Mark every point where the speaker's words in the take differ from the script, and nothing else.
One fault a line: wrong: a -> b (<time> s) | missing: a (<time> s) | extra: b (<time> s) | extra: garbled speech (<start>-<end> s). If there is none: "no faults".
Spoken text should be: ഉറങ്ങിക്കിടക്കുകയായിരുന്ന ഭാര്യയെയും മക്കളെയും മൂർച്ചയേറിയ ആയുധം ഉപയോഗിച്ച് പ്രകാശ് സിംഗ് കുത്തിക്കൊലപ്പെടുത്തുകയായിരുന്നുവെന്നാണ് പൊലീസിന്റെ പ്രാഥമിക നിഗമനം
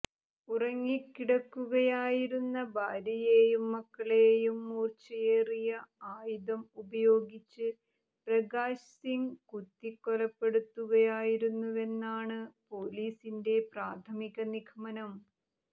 no faults